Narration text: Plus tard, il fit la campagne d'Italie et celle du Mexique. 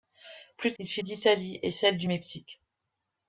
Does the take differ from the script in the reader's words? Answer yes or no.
yes